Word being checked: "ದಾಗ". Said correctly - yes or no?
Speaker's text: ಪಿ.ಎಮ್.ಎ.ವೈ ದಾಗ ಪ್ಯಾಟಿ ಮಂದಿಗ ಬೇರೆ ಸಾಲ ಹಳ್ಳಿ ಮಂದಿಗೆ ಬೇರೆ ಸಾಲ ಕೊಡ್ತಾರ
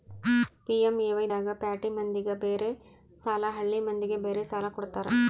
yes